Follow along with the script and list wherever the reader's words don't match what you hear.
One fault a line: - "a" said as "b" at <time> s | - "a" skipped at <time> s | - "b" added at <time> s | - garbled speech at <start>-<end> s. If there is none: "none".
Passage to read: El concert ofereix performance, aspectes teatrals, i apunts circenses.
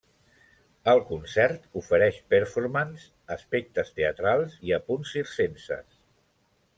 none